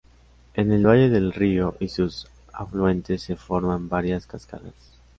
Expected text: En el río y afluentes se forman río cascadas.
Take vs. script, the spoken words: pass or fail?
fail